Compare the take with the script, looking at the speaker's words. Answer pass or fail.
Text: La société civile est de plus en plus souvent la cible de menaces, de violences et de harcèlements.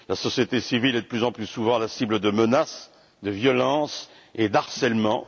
pass